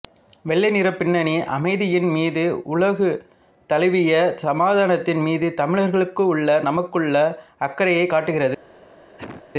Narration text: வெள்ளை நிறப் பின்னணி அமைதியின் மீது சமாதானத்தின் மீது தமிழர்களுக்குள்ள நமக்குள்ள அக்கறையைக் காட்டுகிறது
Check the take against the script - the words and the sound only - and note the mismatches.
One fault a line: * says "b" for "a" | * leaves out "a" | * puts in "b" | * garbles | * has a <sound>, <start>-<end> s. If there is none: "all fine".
* puts in "உலகு தழுவிய"
* has a cough, 9.2-9.4 s